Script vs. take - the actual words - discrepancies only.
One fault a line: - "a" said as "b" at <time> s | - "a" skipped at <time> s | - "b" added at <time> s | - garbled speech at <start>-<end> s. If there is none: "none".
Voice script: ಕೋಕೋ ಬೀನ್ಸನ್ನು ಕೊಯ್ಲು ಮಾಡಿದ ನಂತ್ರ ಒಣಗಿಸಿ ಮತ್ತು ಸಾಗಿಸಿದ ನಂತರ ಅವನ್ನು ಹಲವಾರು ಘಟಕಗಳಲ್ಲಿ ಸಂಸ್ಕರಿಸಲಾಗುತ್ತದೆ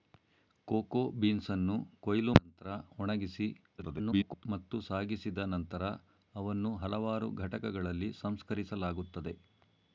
- "ಮಾಡಿದ" skipped at 2.3 s
- garbled speech at 3.8-4.5 s